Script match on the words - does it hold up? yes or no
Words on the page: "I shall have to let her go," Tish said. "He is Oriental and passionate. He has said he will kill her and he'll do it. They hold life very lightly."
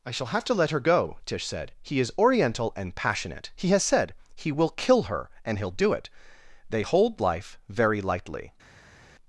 yes